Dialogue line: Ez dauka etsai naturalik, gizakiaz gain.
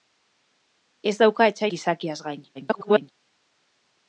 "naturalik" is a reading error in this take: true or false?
true